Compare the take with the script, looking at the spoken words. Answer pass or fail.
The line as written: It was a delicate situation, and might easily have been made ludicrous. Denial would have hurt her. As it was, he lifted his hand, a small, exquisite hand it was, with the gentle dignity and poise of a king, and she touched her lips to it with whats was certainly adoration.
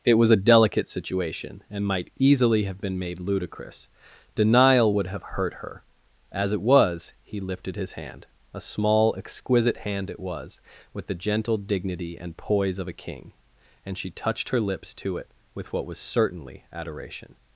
fail